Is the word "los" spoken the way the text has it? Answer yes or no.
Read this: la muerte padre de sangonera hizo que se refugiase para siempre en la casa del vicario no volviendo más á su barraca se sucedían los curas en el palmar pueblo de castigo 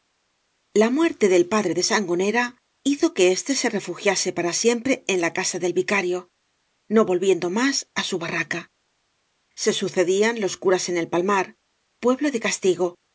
yes